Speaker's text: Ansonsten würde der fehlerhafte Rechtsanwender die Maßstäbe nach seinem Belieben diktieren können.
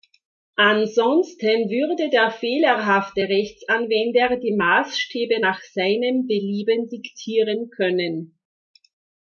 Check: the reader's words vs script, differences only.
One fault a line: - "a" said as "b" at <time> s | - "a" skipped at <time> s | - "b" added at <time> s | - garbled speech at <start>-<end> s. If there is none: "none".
none